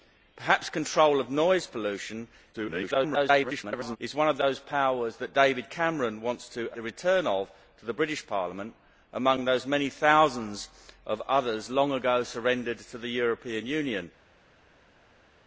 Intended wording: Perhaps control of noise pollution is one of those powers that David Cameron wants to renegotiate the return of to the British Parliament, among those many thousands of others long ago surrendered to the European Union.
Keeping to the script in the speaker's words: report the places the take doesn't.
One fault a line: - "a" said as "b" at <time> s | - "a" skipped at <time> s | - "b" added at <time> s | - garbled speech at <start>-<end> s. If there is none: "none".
- garbled speech at 2.5-4.0 s
- "renegotiate" skipped at 6.7 s